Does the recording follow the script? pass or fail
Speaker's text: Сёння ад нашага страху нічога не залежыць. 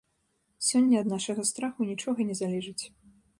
pass